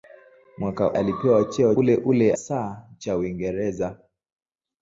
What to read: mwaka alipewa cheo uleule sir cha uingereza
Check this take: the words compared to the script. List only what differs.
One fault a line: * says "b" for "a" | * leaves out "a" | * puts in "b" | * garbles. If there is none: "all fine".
all fine